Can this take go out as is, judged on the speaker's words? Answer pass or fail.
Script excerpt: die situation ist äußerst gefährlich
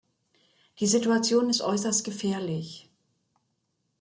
pass